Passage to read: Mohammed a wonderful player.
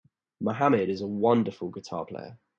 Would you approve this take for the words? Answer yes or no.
no